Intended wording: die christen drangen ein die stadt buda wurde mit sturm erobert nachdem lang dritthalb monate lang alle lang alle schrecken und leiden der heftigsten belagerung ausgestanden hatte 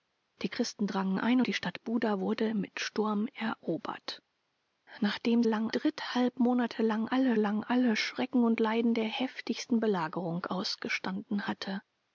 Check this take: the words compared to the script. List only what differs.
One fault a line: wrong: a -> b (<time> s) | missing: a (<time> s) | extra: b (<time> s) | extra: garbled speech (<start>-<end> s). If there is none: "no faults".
no faults